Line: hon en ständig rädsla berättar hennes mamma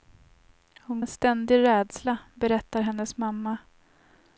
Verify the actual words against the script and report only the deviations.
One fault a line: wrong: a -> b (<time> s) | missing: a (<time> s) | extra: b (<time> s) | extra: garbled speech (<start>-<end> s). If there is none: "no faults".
no faults